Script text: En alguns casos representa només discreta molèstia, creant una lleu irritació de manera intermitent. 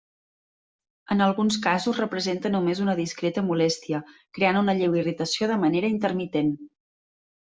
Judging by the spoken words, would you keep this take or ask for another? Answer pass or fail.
fail